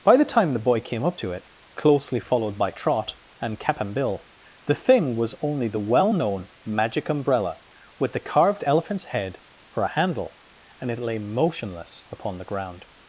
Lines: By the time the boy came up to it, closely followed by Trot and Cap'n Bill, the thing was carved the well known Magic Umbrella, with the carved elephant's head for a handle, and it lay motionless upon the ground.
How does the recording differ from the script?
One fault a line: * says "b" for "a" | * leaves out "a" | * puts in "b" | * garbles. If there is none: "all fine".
* says "only" for "carved"